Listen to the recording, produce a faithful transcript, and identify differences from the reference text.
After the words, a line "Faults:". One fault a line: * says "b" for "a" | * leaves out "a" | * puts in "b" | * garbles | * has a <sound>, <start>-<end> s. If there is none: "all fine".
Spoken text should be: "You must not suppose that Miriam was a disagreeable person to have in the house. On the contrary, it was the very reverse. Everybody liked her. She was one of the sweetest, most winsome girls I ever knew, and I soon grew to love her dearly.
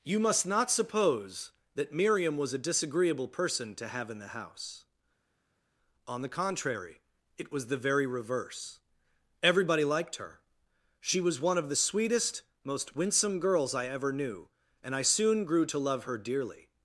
"You must not suppose that Miriam was a disagreeable person to have in the house. On the contrary, it was the very reverse. Everybody liked her. She was one of the sweetest, most winsome girls I ever knew, and I soon grew to love her dearly.
Faults:
all fine